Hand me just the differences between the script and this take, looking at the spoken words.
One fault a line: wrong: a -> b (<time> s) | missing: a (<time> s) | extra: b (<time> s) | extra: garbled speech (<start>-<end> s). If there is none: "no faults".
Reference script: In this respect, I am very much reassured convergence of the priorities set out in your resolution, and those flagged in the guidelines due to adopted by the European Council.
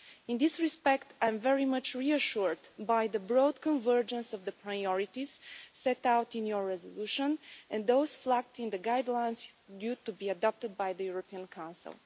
extra: by the broad (2.8 s)
extra: be (10.1 s)